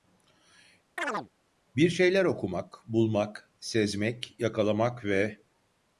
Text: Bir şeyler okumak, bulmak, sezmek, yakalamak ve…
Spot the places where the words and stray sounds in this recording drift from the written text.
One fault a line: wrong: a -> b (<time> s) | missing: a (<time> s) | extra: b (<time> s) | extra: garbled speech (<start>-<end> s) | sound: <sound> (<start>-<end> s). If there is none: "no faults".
sound: chirp (1.0-1.3 s)